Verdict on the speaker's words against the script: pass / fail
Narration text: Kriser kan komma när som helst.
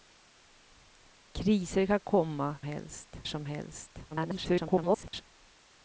fail